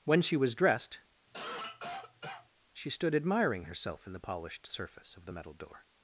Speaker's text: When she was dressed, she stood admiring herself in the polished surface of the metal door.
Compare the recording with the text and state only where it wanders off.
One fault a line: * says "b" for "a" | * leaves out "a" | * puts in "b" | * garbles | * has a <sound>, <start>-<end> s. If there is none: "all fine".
* has a cough, 1.3-2.5 s